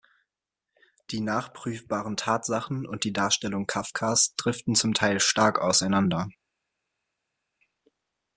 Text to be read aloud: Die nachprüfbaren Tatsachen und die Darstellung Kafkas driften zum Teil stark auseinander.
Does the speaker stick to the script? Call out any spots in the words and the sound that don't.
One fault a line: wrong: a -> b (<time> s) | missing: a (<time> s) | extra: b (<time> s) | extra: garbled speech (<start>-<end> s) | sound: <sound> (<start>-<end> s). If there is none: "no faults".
no faults